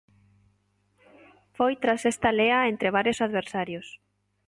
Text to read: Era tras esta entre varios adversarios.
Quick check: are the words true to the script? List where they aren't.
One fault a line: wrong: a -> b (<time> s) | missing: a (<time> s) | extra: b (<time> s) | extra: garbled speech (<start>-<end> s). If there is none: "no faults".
wrong: Era -> Foi (1.6 s)
extra: lea (2.4 s)